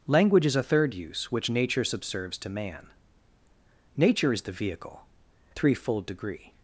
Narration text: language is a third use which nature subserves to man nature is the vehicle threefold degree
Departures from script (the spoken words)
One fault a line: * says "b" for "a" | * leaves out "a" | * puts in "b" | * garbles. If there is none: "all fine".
all fine